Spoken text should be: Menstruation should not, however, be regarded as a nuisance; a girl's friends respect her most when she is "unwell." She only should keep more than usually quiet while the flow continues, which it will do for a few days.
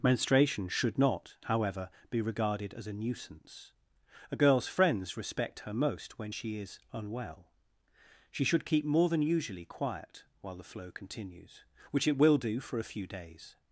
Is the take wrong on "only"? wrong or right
wrong